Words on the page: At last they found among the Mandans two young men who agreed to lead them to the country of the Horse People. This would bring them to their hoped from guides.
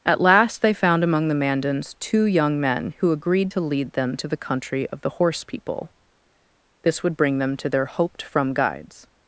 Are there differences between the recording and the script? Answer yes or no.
no